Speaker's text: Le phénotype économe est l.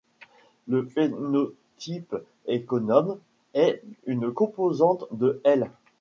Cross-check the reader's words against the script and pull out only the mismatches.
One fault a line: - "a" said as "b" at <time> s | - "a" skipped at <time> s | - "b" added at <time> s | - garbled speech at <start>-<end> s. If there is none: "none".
- "une composante de" added at 4.1 s